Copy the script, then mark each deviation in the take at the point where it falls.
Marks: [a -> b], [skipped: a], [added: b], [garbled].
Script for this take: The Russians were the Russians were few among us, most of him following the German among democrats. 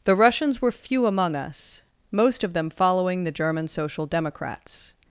The Russians were [skipped: the Russians were] few among us, most of [him -> them] following the German [among -> social] democrats.